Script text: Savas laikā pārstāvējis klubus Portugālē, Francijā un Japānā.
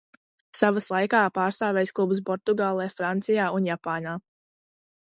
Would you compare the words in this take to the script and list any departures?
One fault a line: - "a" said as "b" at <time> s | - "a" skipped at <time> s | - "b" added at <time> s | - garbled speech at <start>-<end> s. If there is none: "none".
none